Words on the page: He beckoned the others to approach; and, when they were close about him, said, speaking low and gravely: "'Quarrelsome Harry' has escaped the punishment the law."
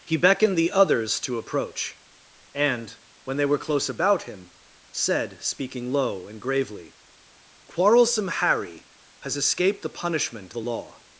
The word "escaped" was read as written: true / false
true